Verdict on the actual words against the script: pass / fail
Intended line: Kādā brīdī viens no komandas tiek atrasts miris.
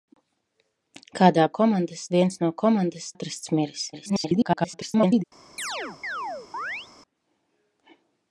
fail